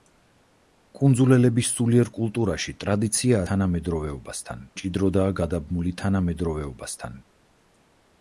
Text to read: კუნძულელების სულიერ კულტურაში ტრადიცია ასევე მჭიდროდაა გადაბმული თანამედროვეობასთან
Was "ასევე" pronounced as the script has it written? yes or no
no